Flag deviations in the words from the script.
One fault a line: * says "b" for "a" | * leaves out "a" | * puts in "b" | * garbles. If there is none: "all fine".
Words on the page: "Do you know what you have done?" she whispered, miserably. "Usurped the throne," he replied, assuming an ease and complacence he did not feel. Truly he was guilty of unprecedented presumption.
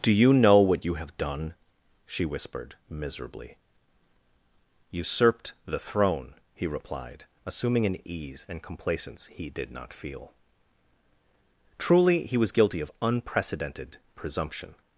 all fine